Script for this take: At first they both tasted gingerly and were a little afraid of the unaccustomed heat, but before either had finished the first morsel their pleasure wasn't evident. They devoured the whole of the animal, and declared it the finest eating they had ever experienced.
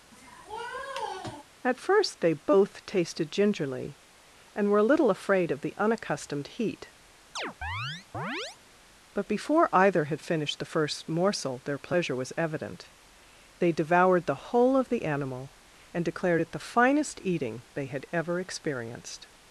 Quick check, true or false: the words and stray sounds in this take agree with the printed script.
false